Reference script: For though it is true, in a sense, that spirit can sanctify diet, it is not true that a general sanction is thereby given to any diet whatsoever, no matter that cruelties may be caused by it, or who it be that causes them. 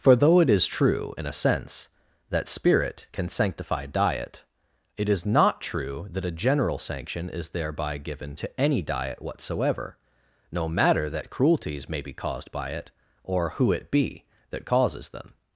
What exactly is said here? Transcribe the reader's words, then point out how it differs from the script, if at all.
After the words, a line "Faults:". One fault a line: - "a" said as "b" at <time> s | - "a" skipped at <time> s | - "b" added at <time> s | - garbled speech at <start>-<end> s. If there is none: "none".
For though it is true, in a sense, that spirit can sanctify diet, it is not true that a general sanction is thereby given to any diet whatsoever, no matter that cruelties may be caused by it, or who it be that causes them.
Faults:
none